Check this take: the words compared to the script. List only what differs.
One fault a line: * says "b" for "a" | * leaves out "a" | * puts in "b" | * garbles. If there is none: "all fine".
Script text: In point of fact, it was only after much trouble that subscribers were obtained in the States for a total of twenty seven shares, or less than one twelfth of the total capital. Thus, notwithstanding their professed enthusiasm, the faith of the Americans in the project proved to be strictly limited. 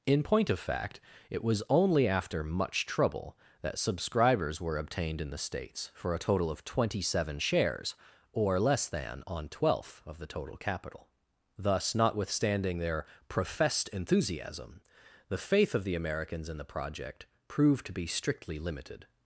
* says "on" for "one"